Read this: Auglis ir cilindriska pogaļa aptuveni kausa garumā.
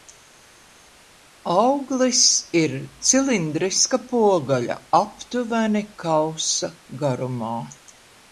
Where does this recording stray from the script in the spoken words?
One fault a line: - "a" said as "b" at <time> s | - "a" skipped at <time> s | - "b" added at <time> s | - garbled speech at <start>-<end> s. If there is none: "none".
none